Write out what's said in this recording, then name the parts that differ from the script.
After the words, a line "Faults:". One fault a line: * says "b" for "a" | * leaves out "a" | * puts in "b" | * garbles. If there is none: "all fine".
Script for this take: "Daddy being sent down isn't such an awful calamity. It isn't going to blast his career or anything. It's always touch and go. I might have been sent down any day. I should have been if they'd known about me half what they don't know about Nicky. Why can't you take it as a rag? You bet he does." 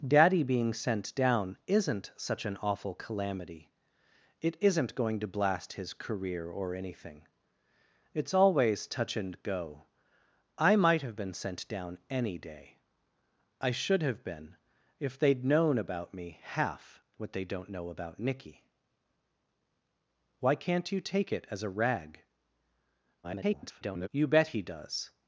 "Daddy being sent down isn't such an awful calamity. It isn't going to blast his career or anything. It's always touch and go. I might have been sent down any day. I should have been if they'd known about me half what they don't know about Nicky. Why can't you take it as a rag? [garbled] You bet he does."
Faults:
* garbles